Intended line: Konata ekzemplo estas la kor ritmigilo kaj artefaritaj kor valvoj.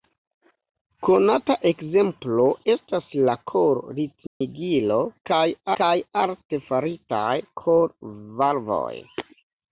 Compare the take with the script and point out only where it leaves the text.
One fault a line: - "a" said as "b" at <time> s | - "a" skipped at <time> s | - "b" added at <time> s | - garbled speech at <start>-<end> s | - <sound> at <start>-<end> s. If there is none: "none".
- dropout at 4.3-4.4 s
- "kaj" added at 5.8 s